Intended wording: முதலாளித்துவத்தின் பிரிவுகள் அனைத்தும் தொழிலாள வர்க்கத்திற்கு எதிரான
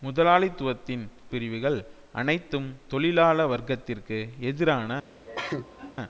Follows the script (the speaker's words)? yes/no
yes